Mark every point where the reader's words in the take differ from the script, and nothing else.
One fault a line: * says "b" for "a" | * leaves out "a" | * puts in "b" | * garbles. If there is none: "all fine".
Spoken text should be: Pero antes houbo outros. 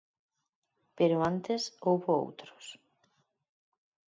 all fine